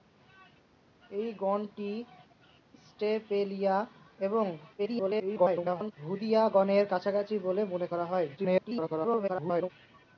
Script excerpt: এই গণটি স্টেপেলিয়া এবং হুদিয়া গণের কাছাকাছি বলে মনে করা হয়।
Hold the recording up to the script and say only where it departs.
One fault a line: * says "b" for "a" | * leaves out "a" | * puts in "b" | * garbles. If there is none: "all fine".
* garbles
* garbles